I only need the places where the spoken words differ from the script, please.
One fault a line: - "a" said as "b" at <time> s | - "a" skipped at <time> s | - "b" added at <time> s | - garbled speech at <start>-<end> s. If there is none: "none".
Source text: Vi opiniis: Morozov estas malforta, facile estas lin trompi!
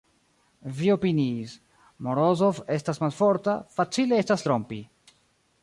- "lin" skipped at 4.5 s